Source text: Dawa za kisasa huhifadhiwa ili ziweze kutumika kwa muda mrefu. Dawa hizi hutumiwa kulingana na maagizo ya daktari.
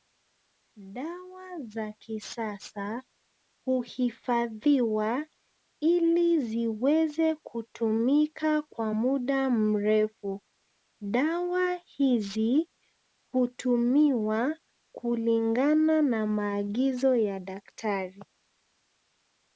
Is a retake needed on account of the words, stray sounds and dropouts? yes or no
no